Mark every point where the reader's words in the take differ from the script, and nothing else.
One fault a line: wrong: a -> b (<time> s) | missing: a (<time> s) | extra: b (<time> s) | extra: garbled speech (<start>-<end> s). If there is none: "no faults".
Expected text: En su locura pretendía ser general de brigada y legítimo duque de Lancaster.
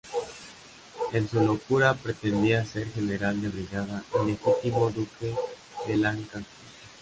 no faults